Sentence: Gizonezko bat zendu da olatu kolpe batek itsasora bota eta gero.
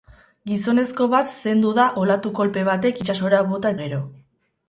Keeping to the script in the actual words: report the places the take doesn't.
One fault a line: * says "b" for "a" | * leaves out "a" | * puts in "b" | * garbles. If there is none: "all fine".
* leaves out "eta"